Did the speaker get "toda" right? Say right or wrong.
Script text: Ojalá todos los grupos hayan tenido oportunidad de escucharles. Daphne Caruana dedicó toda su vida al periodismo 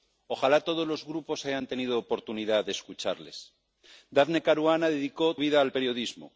wrong